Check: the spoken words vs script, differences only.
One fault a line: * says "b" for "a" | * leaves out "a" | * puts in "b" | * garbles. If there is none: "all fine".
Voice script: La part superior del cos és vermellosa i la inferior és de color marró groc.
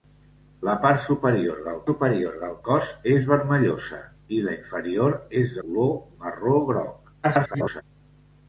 * puts in "superior del"
* leaves out "de"
* garbles